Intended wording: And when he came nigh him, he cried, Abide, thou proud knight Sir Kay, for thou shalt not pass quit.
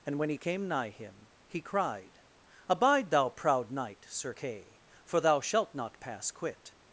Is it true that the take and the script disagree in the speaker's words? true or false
false